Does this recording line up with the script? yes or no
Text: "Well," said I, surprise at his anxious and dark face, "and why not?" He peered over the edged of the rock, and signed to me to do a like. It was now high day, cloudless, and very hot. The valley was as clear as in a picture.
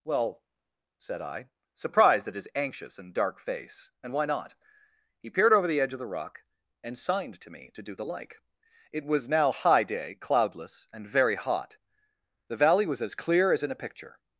no